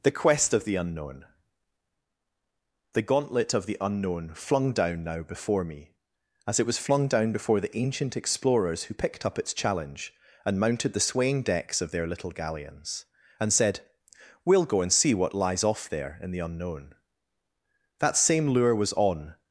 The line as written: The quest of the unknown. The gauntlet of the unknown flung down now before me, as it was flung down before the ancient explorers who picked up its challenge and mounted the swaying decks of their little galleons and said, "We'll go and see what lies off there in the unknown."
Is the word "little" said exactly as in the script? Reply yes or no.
yes